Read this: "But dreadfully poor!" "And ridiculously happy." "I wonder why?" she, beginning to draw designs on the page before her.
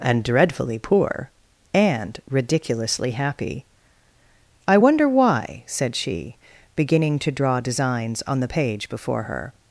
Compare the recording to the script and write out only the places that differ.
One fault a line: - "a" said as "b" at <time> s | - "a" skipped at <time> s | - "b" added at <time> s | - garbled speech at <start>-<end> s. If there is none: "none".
- "But" said as "And" at 0.0 s
- "said" added at 5.7 s